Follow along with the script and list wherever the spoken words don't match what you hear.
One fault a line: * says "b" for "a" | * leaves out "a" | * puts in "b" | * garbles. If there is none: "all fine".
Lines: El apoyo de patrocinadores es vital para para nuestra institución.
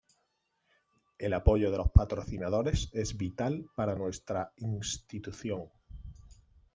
* puts in "los"
* leaves out "para"